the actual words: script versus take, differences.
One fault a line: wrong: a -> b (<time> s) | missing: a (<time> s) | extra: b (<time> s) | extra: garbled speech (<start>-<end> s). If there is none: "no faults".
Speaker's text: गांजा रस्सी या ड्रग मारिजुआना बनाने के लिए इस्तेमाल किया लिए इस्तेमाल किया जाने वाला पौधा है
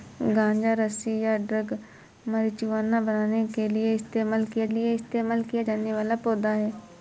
no faults